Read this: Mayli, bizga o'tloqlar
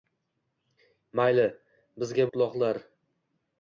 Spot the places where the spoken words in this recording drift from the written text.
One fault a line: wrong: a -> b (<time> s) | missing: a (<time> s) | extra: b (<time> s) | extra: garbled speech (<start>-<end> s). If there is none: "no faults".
no faults